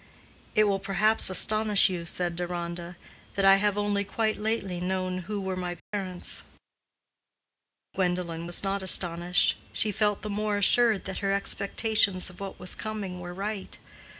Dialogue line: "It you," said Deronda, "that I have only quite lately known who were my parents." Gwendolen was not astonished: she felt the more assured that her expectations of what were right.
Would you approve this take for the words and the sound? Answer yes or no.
no